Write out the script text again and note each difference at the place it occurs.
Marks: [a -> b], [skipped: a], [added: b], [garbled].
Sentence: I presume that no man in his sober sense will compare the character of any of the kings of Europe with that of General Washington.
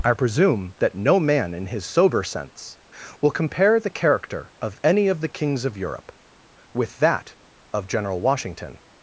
I presume that no man in his sober sense will compare the character of any of the kings of Europe with that of General Washington.